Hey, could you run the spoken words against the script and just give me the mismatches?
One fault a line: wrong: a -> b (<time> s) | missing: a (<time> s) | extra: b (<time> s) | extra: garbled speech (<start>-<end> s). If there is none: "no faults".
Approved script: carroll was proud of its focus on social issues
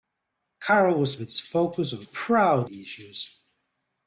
missing: proud of (1.1 s)
wrong: social -> proud (2.0 s)